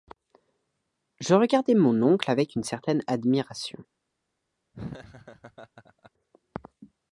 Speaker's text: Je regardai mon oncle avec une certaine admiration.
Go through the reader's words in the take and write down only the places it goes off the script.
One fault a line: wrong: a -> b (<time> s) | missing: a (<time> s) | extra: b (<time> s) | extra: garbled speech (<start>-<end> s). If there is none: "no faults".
no faults